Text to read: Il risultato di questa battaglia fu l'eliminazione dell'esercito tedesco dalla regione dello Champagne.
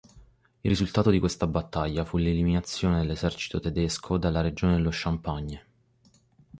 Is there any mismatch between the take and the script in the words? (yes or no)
no